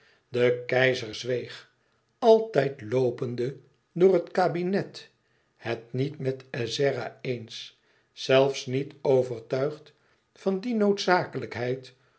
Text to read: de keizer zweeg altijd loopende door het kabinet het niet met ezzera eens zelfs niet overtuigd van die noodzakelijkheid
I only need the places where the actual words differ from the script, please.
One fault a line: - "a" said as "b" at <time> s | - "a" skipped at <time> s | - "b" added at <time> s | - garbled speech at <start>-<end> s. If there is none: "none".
none